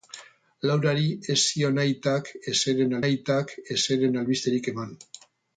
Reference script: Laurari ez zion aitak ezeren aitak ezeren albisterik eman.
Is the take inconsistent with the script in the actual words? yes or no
no